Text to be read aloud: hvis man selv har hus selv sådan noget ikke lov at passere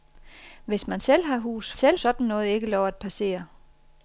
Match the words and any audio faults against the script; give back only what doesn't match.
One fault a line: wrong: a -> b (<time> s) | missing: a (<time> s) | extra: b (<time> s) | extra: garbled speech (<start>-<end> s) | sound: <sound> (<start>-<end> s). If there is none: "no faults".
no faults